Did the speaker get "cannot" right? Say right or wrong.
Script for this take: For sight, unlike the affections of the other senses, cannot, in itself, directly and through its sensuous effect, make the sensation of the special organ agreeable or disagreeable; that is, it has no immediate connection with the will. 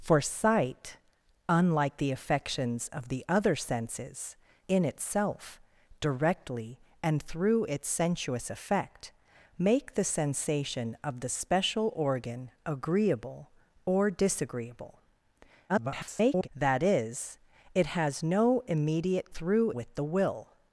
wrong